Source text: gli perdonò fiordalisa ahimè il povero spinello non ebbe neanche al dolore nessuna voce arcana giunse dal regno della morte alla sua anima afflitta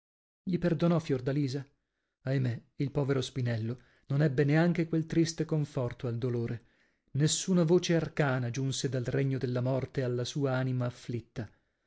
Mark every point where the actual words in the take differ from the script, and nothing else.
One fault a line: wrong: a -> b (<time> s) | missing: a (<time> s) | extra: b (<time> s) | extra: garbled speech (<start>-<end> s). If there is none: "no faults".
extra: quel triste conforto (4.9 s)